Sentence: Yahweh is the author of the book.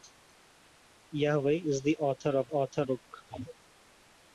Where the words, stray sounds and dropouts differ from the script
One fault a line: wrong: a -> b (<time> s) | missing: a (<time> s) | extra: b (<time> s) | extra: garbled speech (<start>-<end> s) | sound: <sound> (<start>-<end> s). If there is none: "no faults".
wrong: the -> author (2.5 s)